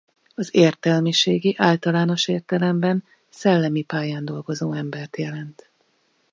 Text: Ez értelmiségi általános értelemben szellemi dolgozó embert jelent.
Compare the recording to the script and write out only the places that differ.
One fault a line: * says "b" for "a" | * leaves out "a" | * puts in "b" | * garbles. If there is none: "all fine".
* says "Az" for "Ez"
* puts in "pályán"